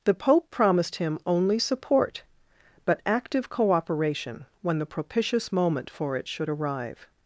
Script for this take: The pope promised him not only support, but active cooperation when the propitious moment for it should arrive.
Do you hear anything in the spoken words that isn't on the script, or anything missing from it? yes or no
yes